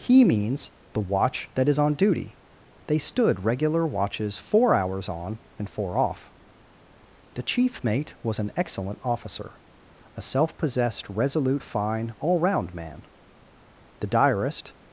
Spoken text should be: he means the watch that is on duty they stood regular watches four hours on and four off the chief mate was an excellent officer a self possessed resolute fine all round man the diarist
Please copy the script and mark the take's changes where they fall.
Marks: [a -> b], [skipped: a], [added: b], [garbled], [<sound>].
he means the watch that is on duty they stood regular watches four hours on and four off the chief mate was an excellent officer a self possessed resolute fine all round man the diarist